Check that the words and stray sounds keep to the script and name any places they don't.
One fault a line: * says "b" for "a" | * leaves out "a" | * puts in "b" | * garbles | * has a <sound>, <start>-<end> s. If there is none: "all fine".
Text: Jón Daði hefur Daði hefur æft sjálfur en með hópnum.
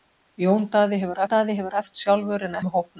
all fine